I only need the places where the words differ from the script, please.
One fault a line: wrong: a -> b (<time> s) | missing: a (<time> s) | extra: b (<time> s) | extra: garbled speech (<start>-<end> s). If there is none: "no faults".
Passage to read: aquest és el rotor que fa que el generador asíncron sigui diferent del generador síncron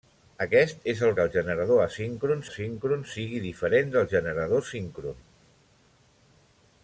missing: rotor (1.1 s)
missing: fa que (1.2 s)
extra: asíncron (2.5 s)